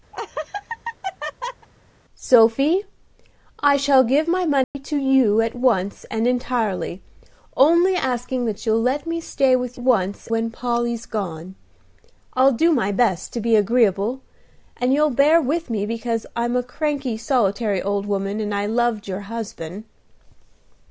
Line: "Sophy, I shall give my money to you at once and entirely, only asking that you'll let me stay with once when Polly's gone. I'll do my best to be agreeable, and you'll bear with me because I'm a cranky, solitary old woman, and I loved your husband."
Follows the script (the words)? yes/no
yes